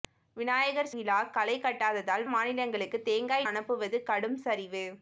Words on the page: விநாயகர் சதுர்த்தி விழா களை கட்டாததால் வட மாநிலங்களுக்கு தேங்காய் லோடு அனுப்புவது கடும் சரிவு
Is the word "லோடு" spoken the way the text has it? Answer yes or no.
no